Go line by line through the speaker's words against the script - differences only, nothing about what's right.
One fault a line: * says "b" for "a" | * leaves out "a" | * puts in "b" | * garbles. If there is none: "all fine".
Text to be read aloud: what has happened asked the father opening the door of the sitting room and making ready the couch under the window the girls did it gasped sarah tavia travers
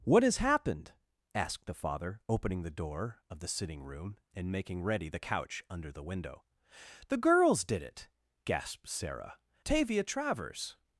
all fine